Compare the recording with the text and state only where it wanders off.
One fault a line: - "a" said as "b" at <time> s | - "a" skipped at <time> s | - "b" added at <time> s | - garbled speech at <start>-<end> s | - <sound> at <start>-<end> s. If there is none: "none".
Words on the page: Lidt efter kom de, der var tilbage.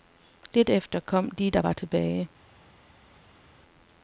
none